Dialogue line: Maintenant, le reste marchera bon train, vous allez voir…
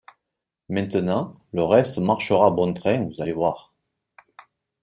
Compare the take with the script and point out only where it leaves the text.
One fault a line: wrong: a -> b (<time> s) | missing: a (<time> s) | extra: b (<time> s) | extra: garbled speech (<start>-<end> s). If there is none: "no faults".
no faults